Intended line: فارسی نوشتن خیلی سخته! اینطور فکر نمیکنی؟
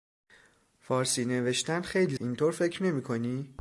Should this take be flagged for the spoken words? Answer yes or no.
yes